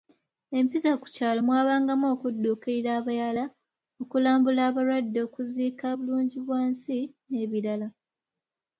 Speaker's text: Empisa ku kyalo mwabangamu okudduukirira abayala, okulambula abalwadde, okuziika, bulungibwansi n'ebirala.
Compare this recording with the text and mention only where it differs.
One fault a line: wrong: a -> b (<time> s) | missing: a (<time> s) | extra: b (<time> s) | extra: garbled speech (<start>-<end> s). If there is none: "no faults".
no faults